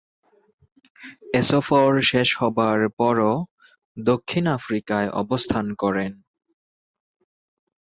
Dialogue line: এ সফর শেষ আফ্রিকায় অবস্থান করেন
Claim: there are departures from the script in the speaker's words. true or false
true